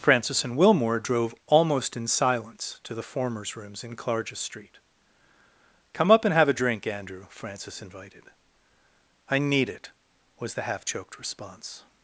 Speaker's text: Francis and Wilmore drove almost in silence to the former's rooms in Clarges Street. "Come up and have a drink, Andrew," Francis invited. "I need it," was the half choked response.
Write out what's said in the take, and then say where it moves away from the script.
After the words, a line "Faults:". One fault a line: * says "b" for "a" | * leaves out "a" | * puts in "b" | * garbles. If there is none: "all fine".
Francis and Wilmore drove almost in silence to the former's rooms in Clarges Street. "Come up and have a drink, Andrew," Francis invited. "I need it," was the half choked response.
Faults:
all fine